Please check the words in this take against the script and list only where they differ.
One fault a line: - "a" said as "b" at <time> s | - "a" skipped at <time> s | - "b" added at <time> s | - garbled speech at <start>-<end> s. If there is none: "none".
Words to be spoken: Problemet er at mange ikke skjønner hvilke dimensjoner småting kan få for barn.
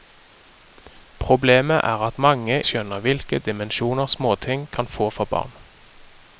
- "ikke" skipped at 2.6 s